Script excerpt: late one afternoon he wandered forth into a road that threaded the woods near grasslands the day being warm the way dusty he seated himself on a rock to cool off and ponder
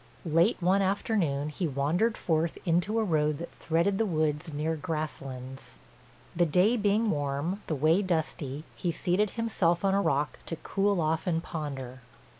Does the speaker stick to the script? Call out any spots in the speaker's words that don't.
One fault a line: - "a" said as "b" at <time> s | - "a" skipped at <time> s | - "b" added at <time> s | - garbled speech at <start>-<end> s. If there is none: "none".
none